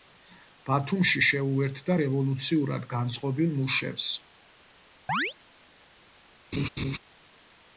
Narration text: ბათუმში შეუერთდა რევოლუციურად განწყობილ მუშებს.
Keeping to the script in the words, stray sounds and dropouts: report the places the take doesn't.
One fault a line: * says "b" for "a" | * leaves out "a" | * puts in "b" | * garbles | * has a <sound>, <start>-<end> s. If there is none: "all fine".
* has a chirp, 5.1-5.3 s
* has a laugh, 6.5-7.0 s